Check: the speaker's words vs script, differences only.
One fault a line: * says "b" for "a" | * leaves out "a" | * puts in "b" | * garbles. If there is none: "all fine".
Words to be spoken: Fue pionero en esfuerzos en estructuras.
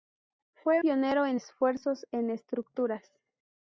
all fine